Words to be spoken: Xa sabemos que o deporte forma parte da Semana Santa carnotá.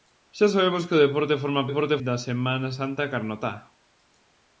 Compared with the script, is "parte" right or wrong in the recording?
wrong